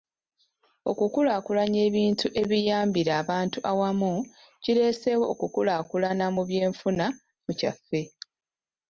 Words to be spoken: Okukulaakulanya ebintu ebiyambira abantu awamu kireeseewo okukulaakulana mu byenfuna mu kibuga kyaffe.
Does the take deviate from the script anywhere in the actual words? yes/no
yes